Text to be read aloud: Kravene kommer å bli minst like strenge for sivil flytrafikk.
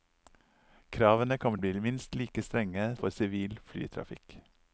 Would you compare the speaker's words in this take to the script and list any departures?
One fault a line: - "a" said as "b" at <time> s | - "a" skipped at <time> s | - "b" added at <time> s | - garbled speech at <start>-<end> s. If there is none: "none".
none